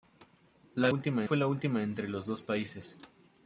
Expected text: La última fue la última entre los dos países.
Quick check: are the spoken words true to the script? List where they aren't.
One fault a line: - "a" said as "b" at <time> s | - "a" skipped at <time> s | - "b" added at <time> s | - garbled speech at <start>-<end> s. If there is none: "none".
none